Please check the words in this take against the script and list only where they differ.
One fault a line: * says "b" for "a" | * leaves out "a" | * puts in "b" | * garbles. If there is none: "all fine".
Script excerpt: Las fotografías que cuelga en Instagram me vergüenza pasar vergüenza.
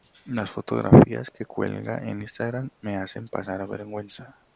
* says "hacen" for "vergüenza"